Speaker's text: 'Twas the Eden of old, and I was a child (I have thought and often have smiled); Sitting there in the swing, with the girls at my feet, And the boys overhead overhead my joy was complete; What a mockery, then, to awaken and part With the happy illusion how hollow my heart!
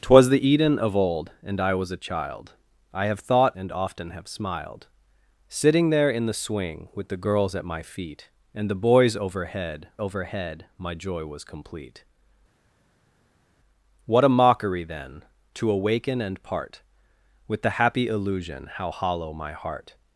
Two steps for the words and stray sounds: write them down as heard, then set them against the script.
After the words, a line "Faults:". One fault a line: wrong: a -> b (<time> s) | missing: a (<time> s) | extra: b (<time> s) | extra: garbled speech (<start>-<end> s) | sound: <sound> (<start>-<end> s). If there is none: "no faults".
'Twas the Eden of old, and I was a child (I have thought and often have smiled); Sitting there in the swing, with the girls at my feet, And the boys overhead overhead my joy was complete; What a mockery, then, to awaken and part With the happy illusion how hollow my heart!
Faults:
no faults